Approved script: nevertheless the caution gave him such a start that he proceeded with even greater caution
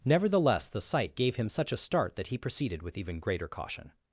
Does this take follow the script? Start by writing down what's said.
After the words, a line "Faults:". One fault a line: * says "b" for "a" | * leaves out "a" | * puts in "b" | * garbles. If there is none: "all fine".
nevertheless the sight gave him such a start that he proceeded with even greater caution
Faults:
* says "sight" for "caution"